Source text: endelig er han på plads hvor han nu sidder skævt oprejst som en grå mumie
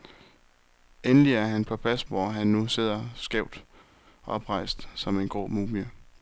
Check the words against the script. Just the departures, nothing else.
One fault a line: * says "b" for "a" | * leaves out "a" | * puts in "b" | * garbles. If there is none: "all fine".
all fine